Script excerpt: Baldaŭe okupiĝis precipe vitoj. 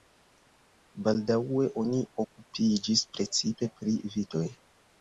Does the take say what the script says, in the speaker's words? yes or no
no